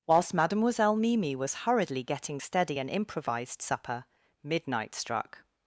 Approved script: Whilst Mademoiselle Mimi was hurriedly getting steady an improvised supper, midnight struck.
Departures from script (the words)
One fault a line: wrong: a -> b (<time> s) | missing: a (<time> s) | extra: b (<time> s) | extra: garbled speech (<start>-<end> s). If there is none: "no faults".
no faults